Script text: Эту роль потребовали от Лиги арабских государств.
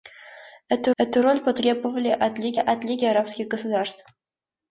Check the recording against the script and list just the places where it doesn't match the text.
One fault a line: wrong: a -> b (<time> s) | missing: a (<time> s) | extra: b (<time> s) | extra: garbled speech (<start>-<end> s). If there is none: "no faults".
extra: эту (1.0 s)
extra: от Лиги (2.6 s)